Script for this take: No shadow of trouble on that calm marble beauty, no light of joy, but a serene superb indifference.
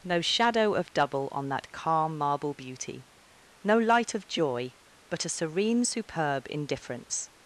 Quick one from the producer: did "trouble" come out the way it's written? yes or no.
no